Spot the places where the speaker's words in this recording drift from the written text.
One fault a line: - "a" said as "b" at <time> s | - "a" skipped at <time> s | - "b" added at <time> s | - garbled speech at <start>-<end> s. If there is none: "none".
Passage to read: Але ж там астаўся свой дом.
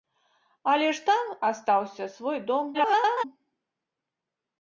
- garbled speech at 2.7-3.2 s